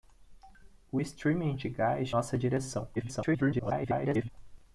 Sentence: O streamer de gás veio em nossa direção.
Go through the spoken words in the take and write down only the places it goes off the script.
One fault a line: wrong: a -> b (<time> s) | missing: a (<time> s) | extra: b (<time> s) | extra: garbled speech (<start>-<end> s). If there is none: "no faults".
missing: veio em (2.1 s)
extra: garbled speech (3.0-4.3 s)